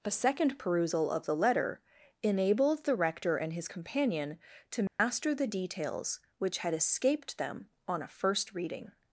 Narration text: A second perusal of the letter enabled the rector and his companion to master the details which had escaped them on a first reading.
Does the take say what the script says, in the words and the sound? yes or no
no